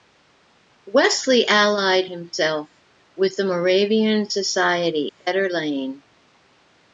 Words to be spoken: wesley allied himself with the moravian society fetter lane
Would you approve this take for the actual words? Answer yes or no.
yes